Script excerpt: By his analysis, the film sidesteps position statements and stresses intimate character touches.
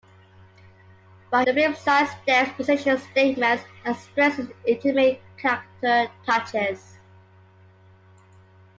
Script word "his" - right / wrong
wrong